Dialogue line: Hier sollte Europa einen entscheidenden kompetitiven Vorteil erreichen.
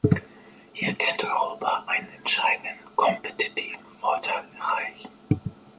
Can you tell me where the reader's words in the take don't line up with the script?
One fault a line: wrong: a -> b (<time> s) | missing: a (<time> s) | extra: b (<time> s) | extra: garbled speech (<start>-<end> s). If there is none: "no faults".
wrong: sollte -> könnte (0.9 s)